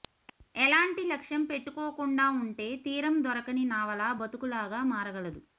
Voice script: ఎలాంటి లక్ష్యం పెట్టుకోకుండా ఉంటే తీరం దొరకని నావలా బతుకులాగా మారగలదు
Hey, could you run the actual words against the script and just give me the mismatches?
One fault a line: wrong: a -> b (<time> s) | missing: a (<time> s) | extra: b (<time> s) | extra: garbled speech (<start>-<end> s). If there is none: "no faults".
no faults